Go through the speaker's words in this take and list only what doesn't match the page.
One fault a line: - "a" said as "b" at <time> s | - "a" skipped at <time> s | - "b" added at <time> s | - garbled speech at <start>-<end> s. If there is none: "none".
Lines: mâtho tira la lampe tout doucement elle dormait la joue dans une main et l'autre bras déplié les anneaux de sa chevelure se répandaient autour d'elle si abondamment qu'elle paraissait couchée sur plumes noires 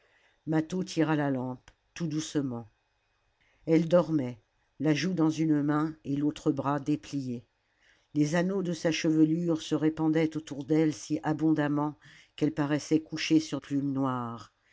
none